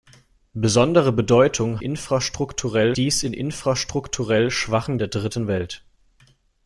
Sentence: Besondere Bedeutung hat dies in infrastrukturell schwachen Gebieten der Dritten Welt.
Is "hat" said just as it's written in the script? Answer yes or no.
no